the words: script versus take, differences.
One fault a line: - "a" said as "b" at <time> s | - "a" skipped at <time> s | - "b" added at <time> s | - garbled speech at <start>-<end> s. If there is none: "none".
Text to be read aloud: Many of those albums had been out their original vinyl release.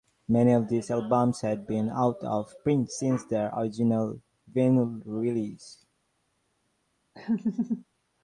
- "those" said as "these" at 0.7 s
- "of print since" added at 2.2 s